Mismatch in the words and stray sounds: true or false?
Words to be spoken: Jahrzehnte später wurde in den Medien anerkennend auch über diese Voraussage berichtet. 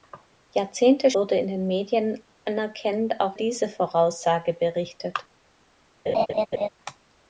true